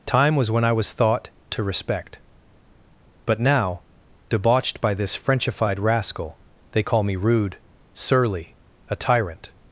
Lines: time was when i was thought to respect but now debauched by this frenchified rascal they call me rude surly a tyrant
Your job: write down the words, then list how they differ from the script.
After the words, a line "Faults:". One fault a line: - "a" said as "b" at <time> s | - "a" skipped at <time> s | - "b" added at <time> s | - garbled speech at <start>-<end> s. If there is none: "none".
time was when i was thought to respect but now debauched by this frenchified rascal they call me rude surly a tyrant
Faults:
none